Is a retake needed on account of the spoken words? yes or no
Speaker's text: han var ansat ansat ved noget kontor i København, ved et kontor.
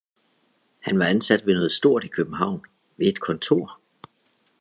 yes